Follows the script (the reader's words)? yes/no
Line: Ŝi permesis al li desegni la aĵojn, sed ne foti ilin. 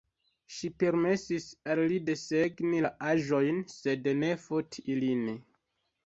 yes